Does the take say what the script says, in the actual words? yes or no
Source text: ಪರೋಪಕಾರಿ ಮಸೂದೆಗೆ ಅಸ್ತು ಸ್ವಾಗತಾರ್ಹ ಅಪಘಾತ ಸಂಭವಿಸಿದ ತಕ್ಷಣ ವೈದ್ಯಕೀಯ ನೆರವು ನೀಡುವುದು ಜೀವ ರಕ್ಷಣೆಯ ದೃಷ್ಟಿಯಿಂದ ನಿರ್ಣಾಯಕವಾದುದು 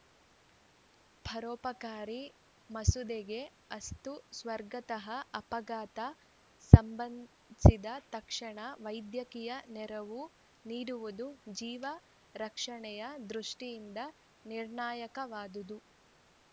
yes